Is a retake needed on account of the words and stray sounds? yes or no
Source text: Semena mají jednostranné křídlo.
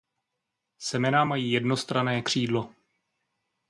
no